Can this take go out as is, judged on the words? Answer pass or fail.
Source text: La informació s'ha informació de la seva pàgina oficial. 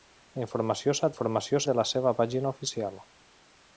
pass